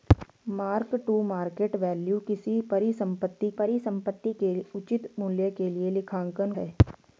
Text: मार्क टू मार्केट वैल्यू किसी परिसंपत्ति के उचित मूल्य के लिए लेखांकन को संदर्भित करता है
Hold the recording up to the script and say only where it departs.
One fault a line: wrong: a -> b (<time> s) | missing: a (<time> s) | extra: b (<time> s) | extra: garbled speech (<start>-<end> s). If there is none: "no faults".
extra: परिसंपत्ति (3.6 s)
missing: को संदर्भित करता (6.5 s)